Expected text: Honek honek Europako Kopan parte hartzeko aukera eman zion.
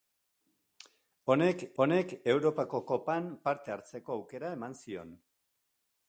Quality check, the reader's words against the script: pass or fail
pass